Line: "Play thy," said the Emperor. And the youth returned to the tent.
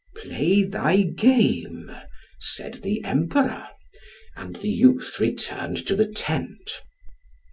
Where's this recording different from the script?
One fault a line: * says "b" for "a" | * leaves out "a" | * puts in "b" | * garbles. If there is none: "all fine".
* puts in "game"